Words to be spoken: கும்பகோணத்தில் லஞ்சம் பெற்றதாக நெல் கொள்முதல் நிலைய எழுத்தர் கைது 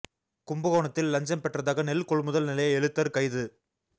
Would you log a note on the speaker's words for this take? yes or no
no